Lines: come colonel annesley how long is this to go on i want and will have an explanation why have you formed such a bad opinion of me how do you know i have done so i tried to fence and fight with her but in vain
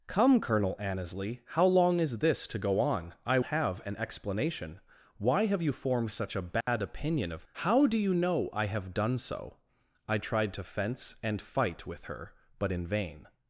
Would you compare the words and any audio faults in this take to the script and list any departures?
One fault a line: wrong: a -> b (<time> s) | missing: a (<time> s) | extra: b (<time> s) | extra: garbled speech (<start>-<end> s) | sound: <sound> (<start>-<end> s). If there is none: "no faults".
missing: want and will (3.4 s)
sound: dropout (6.6-6.7 s)
missing: me (7.5 s)